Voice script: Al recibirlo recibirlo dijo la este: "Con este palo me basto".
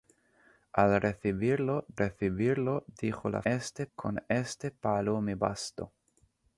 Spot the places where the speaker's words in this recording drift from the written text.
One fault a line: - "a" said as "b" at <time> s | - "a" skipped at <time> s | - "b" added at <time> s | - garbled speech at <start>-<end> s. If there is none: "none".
none